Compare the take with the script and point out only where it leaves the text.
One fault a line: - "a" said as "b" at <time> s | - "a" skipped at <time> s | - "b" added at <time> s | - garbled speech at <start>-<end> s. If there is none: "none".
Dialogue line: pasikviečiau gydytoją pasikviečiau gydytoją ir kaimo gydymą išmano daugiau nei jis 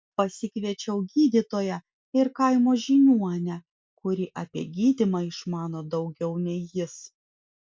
- "pasikviečiau gydytoją ir kaimo" said as "ir kaimo žiniuonę kuri apie" at 2.2 s